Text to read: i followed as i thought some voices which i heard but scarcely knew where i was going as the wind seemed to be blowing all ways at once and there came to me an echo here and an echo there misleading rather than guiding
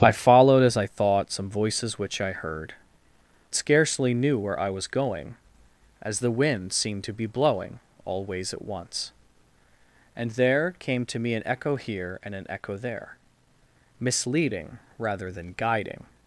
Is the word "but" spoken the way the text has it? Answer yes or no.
no